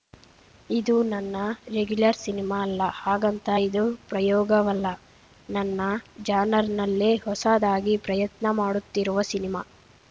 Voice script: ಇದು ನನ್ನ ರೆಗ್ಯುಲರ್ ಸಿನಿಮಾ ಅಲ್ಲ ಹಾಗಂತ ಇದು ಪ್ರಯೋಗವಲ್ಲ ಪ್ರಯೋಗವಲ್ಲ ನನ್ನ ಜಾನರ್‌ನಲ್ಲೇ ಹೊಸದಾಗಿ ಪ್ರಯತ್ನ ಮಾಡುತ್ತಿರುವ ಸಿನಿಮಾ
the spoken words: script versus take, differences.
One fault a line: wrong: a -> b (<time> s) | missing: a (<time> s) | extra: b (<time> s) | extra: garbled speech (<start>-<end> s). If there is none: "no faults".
missing: ಪ್ರಯೋಗವಲ್ಲ (4.9 s)